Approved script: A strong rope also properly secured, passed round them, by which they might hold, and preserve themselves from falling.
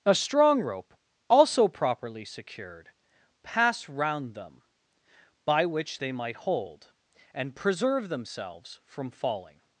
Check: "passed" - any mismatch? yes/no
yes